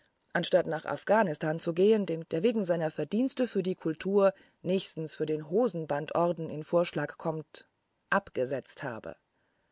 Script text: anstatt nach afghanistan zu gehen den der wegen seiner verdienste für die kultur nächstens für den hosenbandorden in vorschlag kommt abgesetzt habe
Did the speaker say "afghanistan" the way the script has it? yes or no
yes